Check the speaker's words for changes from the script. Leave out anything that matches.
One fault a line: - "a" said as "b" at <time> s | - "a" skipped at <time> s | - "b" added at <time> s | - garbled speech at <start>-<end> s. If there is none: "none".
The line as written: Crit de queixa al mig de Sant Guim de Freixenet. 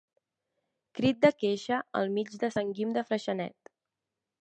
none